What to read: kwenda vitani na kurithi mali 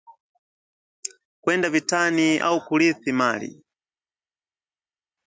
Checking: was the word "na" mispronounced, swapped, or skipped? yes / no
yes